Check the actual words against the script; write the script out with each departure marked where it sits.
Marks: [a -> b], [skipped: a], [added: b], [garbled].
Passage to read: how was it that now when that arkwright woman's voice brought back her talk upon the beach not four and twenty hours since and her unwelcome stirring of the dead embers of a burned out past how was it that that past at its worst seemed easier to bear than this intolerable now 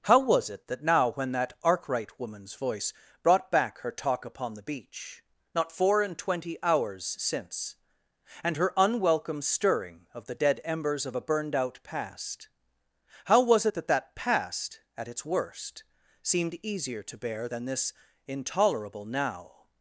how was it that now when that arkwright woman's voice brought back her talk upon the beach not four and twenty hours since and her unwelcome stirring of the dead embers of a burned out past how was it that that past at its worst seemed easier to bear than this intolerable now